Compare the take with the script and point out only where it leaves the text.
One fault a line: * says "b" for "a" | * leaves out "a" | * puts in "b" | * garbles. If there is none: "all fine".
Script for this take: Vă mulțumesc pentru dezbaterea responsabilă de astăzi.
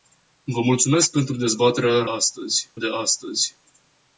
* says "astăzi" for "responsabilă"